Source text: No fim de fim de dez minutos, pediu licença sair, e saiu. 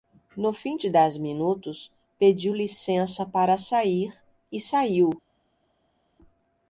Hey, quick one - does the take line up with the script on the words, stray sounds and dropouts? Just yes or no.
no